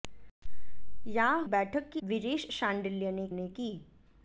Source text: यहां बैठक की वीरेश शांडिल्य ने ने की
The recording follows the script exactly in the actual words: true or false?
true